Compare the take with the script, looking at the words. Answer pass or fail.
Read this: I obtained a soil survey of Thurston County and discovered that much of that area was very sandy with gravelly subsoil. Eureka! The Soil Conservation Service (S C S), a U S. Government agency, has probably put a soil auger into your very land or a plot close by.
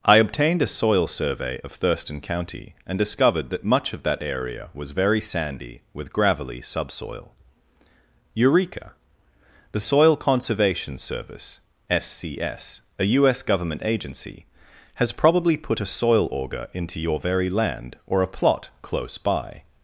pass